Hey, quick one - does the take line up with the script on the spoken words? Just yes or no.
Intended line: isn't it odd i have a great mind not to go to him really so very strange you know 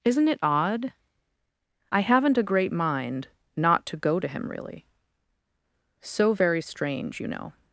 no